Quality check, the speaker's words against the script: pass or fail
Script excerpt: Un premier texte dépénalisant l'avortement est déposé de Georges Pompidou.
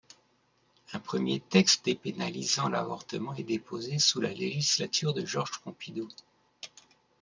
fail